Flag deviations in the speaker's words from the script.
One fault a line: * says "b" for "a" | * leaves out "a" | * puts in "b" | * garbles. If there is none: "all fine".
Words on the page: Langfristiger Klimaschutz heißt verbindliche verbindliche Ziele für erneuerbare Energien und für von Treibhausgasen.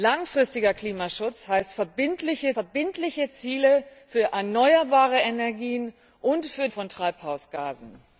all fine